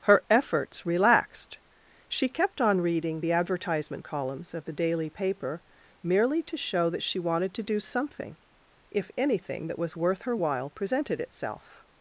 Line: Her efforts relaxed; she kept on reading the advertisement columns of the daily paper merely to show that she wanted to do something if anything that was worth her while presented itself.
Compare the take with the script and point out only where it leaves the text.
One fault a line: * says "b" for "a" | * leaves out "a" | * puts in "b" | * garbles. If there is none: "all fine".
all fine